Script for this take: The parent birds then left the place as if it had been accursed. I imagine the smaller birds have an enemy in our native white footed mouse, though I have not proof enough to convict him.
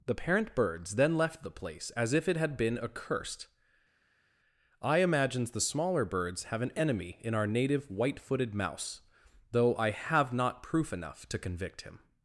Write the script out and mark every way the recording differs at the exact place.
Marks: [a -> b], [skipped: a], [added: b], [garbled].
The parent birds then left the place as if it had been accursed. I [imagine -> imagines] the smaller birds have an enemy in our native white footed mouse, though I have not proof enough to convict him.